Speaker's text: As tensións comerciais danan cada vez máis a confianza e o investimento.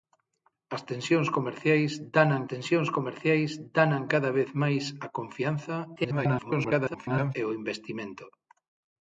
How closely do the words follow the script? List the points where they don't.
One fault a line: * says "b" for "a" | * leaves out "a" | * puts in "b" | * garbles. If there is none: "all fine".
* puts in "tensións comerciais danan"
* garbles